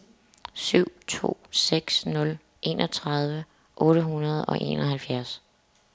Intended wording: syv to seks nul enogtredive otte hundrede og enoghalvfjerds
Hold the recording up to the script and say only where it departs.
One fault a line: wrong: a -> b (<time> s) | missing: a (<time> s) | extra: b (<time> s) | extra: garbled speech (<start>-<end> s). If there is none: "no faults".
no faults